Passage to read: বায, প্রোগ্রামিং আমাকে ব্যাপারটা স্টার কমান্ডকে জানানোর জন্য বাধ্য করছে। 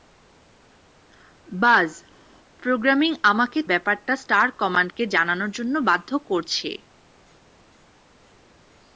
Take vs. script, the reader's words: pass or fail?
pass